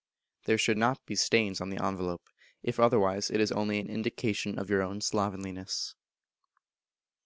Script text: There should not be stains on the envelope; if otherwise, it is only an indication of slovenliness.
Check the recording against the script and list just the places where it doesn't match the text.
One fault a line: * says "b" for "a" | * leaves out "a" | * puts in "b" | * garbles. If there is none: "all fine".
* puts in "your own"